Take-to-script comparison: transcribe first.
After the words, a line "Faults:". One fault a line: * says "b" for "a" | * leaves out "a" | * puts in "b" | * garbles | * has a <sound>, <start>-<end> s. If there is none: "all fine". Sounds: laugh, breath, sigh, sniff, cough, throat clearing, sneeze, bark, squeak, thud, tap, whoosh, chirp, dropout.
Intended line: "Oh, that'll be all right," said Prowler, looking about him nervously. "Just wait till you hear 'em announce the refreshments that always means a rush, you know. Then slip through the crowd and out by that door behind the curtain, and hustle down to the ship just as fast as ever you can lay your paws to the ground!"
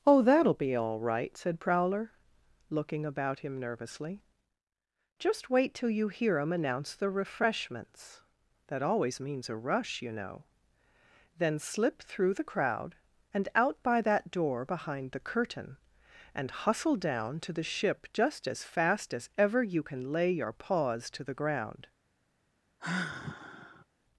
"Oh, that'll be all right," said Prowler, looking about him nervously. "Just wait till you hear 'em announce the refreshments that always means a rush, you know. Then slip through the crowd and out by that door behind the curtain, and hustle down to the ship just as fast as ever you can lay your paws to the ground!"
Faults:
* has a sigh, 22.8-23.8 s